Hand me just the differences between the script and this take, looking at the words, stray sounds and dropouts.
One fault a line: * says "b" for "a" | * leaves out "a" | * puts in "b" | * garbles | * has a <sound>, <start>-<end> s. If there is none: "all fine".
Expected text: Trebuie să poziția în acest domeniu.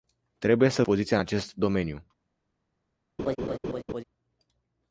* has a laugh, 3.2-4.0 s